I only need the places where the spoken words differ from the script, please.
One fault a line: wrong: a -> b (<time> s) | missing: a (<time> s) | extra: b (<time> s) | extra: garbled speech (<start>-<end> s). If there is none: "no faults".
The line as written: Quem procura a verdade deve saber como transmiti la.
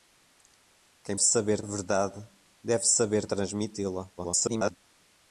wrong: procura -> saber (1.2 s)
missing: como (3.3 s)
extra: garbled speech (4.2-4.8 s)